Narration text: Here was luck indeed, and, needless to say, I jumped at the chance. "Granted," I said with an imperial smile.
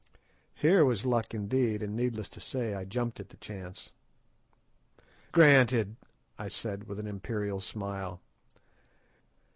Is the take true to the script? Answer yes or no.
yes